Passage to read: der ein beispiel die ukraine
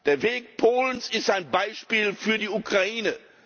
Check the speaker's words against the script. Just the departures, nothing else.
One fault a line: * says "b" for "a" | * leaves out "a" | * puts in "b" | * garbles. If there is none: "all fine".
* puts in "weg polens ist"
* puts in "für"